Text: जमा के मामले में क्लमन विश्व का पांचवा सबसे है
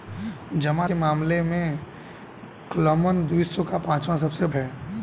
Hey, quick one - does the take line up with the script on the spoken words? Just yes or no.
yes